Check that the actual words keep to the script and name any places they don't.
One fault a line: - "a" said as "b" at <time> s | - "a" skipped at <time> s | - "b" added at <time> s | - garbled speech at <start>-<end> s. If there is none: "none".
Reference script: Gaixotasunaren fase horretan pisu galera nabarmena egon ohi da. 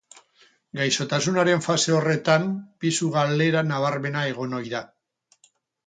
none